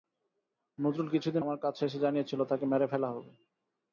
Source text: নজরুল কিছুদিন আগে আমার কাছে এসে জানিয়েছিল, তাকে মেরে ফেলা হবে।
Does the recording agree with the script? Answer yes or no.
no